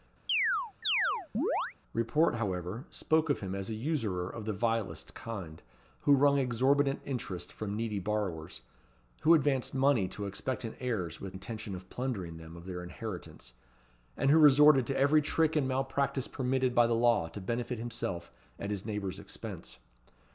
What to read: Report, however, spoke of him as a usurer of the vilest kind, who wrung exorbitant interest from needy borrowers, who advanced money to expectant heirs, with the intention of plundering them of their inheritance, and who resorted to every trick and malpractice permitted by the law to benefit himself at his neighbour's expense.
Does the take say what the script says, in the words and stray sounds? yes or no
no